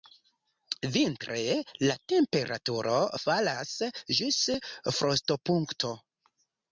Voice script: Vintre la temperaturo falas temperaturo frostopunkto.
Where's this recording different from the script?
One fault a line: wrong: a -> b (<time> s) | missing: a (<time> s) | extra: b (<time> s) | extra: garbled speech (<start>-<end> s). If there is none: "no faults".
wrong: temperaturo -> ĝis (4.2 s)